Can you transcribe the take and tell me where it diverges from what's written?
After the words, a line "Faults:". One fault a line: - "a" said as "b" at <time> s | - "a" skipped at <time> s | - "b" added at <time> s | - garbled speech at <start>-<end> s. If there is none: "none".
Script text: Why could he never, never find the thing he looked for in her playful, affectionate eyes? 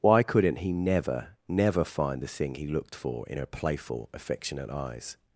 Why couldn't he never, never find the thing he looked for in her playful, affectionate eyes?
Faults:
- "could" said as "couldn't" at 0.2 s